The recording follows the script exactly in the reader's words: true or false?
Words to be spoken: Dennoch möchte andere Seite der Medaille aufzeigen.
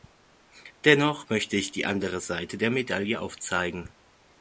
false